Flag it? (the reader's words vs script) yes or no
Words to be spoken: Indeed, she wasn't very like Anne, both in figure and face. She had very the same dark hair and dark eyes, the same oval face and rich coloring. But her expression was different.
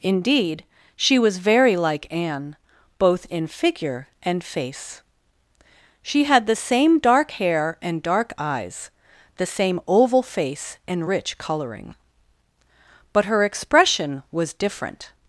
yes